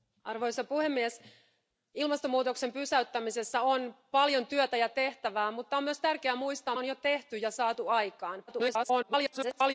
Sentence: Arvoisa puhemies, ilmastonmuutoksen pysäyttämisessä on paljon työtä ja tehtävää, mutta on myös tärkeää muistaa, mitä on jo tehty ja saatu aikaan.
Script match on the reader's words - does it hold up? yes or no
no